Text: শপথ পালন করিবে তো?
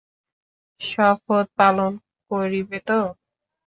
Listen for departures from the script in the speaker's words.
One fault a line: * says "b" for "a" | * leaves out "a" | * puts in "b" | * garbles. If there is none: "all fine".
all fine